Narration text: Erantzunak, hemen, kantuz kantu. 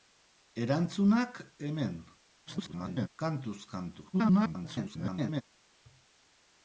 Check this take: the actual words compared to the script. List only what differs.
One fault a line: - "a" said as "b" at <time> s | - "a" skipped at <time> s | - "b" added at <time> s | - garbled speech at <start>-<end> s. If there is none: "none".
- garbled speech at 2.5-3.1 s
- garbled speech at 4.1-5.4 s